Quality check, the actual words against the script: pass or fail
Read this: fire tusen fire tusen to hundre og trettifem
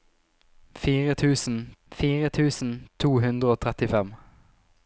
pass